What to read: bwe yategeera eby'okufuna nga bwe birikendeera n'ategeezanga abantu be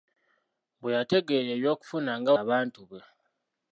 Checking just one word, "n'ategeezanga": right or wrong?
wrong